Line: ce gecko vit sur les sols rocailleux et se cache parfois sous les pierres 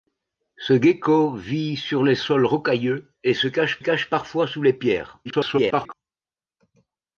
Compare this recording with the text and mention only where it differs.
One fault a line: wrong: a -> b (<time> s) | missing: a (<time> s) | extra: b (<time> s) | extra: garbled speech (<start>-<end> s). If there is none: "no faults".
extra: cache (3.8 s)
extra: garbled speech (5.2-5.9 s)